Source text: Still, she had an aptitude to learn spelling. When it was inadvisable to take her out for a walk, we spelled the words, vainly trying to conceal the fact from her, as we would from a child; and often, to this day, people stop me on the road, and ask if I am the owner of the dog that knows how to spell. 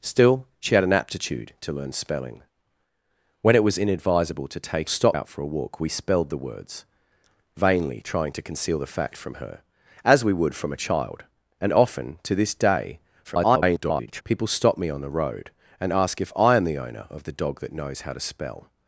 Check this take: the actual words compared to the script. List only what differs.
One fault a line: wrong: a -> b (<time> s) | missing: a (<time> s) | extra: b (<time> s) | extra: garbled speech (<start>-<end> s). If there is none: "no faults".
wrong: her -> stop (4.9 s)
extra: garbled speech (13.2-14.2 s)